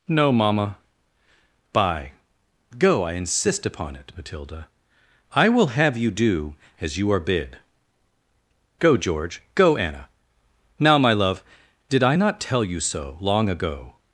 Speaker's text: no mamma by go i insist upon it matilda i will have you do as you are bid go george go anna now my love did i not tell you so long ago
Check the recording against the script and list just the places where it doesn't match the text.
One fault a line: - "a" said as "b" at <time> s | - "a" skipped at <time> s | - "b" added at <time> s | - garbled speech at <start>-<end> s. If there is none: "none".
none